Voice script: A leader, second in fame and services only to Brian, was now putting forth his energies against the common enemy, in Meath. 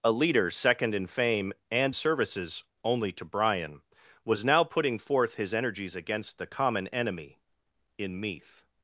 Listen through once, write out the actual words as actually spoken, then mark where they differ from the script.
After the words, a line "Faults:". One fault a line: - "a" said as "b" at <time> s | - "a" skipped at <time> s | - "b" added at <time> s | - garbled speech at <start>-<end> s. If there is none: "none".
A leader, second in fame and services only to Brian, was now putting forth his energies against the common enemy, in Meath.
Faults:
none